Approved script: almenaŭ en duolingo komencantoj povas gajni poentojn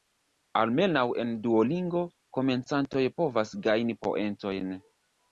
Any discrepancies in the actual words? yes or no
no